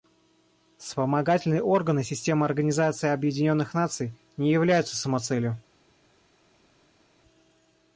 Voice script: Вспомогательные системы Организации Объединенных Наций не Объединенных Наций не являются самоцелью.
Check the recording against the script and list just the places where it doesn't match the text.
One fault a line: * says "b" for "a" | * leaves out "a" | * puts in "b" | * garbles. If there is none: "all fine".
* puts in "органы"
* leaves out "Объединенных Наций не"